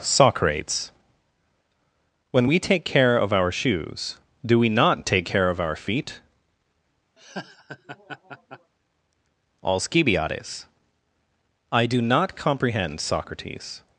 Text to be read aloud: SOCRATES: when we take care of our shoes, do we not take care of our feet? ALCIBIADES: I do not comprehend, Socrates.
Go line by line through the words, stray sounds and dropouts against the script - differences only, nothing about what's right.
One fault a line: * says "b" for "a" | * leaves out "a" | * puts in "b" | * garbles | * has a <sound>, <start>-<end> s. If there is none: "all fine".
* has a laugh, 7.2-8.7 s